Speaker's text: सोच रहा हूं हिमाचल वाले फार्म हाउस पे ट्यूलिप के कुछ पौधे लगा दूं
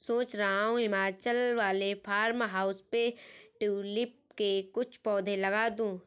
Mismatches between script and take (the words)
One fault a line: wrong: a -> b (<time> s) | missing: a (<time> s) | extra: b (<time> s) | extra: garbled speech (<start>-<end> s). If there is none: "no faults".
no faults